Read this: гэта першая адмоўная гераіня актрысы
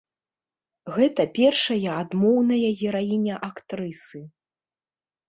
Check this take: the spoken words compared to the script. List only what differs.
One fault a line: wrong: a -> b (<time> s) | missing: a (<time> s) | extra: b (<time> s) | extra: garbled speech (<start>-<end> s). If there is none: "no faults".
no faults